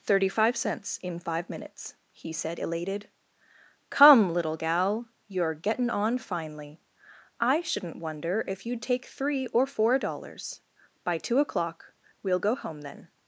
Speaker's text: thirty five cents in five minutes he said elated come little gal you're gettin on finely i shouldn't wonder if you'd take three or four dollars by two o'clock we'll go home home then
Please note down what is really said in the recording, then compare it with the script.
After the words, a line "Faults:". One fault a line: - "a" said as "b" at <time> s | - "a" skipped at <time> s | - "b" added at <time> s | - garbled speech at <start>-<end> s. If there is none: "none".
thirty five cents in five minutes he said elated come little gal you're gettin on finely i shouldn't wonder if you'd take three or four dollars by two o'clock we'll go home then
Faults:
- "home" skipped at 12.8 s